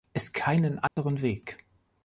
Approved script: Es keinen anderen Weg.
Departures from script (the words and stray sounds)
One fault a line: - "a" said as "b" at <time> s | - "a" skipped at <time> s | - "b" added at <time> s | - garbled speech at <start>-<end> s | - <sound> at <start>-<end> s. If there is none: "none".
- dropout at 0.9-1.0 s